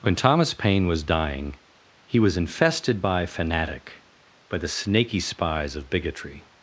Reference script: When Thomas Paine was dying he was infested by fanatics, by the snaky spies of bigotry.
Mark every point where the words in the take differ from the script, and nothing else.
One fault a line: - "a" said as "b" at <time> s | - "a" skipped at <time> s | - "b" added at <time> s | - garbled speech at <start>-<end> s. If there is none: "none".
- "fanatics" said as "fanatic" at 3.2 s